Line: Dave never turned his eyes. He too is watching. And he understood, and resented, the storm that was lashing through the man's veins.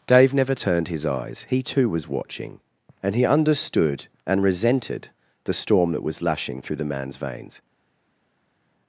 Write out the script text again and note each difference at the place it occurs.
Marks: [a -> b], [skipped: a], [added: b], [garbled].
Dave never turned his eyes. He too [is -> was] watching. And he understood, and resented, the storm that was lashing through the man's veins.